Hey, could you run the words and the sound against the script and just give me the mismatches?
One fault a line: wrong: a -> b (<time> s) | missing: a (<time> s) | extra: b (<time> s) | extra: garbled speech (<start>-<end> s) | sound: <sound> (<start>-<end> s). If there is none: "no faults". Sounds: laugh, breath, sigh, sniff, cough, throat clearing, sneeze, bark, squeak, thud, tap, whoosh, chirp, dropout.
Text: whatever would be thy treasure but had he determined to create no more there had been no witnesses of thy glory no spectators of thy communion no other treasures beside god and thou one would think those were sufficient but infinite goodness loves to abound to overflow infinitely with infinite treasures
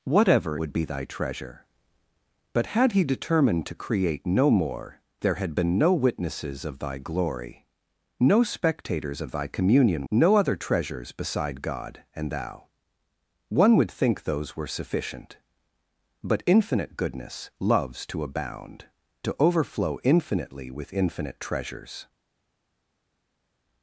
no faults